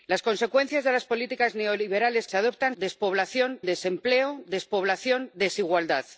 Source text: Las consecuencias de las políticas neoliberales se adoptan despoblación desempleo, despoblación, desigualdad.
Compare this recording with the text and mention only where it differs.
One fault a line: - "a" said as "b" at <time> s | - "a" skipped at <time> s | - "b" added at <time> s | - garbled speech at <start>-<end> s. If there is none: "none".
none